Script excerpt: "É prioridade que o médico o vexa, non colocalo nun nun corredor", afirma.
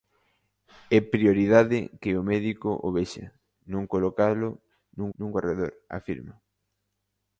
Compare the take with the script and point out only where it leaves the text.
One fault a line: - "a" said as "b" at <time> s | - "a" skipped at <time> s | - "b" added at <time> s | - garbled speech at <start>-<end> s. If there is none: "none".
none